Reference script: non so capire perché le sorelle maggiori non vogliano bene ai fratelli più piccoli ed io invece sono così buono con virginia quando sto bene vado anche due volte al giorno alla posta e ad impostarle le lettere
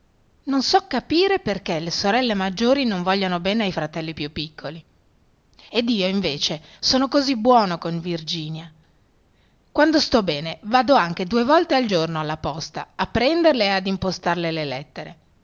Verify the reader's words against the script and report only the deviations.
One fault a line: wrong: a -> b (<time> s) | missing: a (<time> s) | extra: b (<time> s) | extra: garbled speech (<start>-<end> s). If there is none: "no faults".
extra: a prenderle (13.0 s)